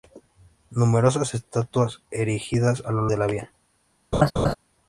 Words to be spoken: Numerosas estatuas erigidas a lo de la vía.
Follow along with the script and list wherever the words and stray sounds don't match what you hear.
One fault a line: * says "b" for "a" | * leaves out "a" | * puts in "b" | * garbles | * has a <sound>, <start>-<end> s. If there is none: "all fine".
* has a laugh, 4.1-4.5 s